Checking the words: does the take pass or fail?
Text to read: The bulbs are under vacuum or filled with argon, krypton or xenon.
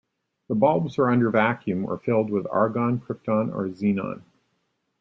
pass